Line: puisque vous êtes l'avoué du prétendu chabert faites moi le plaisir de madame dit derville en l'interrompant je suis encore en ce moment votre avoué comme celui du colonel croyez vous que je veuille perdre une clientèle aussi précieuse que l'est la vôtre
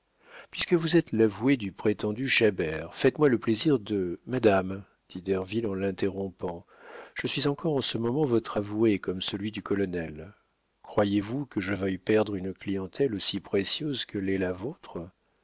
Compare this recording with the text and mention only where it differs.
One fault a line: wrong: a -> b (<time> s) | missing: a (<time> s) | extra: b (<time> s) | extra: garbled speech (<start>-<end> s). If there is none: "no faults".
no faults